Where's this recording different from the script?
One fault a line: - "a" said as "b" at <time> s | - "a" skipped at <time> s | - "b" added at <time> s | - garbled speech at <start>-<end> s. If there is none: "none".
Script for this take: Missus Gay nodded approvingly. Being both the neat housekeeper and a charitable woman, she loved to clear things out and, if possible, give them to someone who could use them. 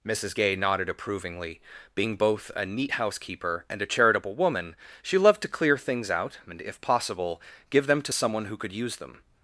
- "the" said as "a" at 2.5 s